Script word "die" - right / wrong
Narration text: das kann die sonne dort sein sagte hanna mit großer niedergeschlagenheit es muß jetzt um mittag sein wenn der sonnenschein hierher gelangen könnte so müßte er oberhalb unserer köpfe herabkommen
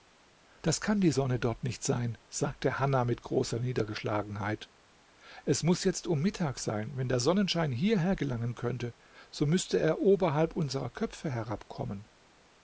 right